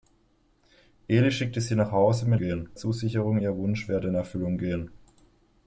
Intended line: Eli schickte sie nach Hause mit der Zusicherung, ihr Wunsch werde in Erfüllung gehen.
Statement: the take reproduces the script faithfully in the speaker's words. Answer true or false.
false